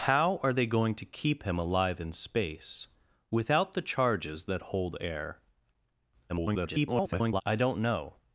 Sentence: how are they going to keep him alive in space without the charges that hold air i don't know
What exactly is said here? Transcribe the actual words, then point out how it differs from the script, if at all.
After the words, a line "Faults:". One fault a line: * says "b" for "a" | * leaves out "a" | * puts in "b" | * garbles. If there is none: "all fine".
how are they going to keep him alive in space without the charges that hold air [garbled] i don't know
Faults:
* garbles